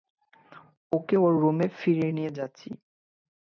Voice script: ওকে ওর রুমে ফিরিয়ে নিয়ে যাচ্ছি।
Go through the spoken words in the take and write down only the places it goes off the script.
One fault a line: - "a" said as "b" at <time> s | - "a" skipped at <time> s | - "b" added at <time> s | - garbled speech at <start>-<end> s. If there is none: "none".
none